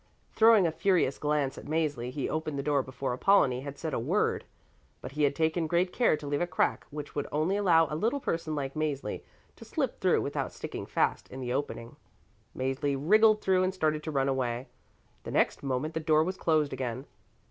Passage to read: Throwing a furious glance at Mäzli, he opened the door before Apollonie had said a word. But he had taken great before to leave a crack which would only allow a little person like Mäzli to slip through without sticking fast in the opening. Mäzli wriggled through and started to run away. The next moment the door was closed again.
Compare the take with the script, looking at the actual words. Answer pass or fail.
fail